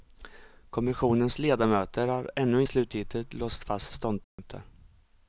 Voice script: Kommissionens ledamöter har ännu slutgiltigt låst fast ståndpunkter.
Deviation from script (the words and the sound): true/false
true